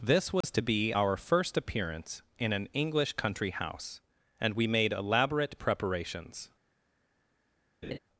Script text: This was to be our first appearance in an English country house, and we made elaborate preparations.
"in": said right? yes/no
yes